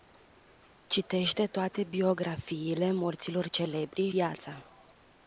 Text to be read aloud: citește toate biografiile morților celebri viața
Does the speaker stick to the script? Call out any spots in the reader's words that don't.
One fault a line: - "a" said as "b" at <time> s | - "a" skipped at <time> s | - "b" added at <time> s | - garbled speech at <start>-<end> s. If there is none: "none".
none